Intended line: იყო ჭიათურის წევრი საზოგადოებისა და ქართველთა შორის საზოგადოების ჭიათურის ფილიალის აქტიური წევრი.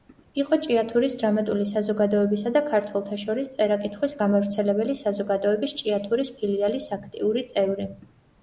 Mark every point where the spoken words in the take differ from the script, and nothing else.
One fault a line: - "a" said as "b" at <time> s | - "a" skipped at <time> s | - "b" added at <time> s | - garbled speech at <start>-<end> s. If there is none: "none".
- "წევრი" said as "დრამატული" at 1.2 s
- "წერა კითხვის გამავრცელებელი" added at 3.6 s